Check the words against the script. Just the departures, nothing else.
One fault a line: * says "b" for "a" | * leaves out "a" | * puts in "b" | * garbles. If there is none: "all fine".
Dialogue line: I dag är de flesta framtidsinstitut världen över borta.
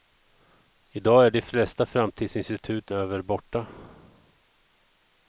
* leaves out "världen"